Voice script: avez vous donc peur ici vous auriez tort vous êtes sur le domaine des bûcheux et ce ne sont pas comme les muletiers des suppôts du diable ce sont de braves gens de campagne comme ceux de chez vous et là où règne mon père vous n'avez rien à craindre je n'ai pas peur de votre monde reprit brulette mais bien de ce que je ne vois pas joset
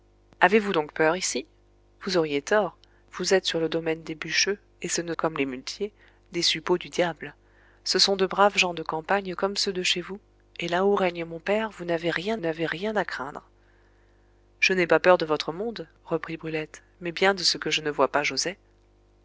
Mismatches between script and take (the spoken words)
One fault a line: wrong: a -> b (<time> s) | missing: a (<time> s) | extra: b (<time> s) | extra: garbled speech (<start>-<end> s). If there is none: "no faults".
missing: sont pas (5.1 s)
extra: n'avez rien (12.4 s)